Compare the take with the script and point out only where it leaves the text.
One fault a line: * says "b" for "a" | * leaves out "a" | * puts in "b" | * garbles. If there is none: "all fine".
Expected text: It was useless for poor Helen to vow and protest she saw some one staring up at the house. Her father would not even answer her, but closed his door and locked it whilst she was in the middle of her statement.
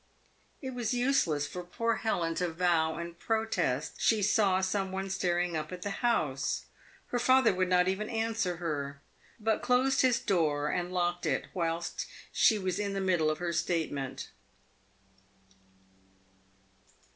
all fine